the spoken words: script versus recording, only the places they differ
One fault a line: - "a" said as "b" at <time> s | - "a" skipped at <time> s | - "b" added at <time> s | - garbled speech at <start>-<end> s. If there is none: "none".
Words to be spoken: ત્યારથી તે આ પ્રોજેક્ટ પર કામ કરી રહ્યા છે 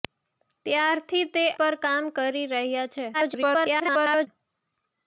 - "આ પ્રોજેક્ટ" skipped at 1.4 s
- garbled speech at 3.1-4.3 s